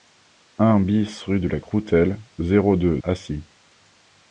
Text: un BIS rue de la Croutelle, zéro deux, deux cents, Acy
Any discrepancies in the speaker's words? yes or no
yes